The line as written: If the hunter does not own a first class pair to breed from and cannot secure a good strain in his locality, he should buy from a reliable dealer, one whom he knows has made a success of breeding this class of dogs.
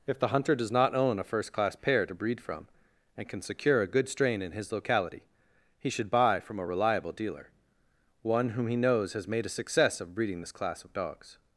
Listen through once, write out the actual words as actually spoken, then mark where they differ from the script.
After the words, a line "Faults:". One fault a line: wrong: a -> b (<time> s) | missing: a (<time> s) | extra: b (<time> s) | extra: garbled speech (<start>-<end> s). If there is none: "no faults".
If the hunter does not own a first class pair to breed from and can secure a good strain in his locality, he should buy from a reliable dealer, one whom he knows has made a success of breeding this class of dogs.
Faults:
wrong: cannot -> can (3.3 s)